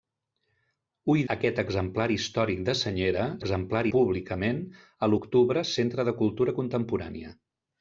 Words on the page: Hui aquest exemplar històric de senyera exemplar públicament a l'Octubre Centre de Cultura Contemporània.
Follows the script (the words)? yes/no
yes